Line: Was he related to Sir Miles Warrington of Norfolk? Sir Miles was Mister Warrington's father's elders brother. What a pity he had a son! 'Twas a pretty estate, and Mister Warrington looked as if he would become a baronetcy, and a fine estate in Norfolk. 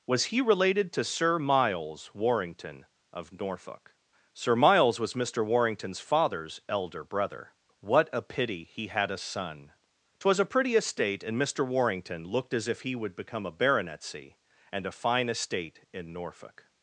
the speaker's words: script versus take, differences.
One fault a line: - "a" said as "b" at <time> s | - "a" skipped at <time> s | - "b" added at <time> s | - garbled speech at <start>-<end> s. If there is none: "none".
- "elders" said as "elder" at 6.7 s